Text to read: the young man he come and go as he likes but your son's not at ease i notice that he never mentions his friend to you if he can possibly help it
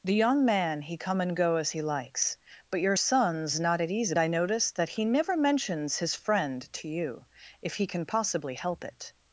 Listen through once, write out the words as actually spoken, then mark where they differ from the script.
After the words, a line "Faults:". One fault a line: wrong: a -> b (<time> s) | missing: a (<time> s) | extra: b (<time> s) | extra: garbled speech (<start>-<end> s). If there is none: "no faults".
the young man he come and go as he likes but your son's not at ease i notice that he never mentions his friend to you if he can possibly help it
Faults:
no faults